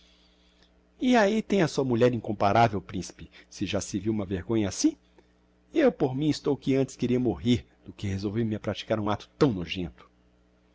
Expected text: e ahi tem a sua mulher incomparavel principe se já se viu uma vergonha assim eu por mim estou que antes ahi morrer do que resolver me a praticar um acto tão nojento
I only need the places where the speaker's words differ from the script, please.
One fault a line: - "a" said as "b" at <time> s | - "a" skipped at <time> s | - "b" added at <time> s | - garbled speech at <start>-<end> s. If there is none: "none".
- "ahi" said as "queria" at 7.0 s